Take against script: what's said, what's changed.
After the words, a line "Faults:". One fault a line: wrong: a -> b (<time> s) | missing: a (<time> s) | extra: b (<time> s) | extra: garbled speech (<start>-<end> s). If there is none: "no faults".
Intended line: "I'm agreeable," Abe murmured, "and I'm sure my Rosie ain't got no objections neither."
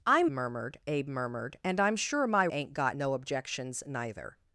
"I'm murmured," Abe murmured, "and I'm sure my Ain't got no objections neither."
Faults:
wrong: agreeable -> murmured (0.3 s)
missing: Rosie (2.5 s)